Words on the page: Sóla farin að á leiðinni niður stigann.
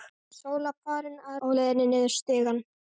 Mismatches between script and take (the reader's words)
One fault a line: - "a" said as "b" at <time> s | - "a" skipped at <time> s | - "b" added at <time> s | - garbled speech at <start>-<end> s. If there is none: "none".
none